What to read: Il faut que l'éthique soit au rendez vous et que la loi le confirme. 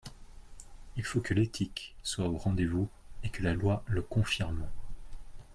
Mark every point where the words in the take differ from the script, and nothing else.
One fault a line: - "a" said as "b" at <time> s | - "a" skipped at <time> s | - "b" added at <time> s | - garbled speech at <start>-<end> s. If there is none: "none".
none